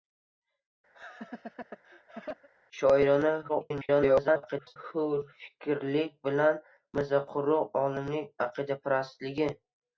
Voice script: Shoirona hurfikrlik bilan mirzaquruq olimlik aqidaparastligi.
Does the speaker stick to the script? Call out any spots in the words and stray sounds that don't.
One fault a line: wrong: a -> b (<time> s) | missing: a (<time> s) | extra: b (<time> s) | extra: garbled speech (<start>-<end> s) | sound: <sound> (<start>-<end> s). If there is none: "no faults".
sound: laugh (0.9-2.5 s)
extra: garbled speech (3.5-4.8 s)